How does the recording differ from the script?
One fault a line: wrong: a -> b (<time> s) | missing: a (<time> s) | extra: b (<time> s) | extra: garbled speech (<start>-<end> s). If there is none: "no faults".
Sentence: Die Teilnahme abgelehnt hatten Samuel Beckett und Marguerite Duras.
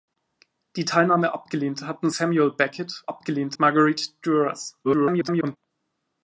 wrong: und -> abgelehnt (3.1 s)
extra: garbled speech (4.8-5.6 s)